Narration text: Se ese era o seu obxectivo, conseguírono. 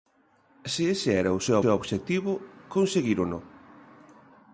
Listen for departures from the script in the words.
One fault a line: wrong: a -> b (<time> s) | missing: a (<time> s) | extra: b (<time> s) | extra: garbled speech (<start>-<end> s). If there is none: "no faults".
extra: seu (1.6 s)